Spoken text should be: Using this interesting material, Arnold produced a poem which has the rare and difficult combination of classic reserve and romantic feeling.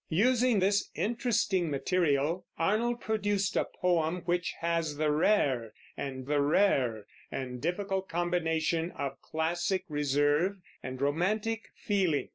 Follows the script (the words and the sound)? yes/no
no